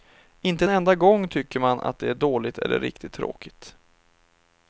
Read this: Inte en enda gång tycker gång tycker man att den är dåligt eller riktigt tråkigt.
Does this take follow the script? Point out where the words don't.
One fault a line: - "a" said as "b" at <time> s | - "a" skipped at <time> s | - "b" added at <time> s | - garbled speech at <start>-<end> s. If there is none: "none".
- "gång tycker" skipped at 1.6 s
- "den" said as "det" at 2.0 s